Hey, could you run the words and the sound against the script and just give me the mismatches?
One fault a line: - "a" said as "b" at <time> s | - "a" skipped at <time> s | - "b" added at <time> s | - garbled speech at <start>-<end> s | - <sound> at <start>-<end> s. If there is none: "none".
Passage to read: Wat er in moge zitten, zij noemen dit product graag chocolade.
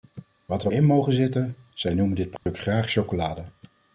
- dropout at 2.4-2.5 s